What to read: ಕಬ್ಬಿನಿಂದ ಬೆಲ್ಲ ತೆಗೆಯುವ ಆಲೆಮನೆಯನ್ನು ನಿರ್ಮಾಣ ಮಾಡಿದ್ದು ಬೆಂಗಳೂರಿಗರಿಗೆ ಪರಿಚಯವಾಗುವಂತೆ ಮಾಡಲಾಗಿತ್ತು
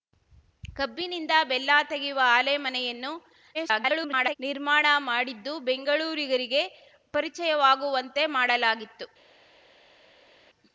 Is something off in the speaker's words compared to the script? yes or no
yes